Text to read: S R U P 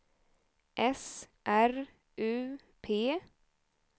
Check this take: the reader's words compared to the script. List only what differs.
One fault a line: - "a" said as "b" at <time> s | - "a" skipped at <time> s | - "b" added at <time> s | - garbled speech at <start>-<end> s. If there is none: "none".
none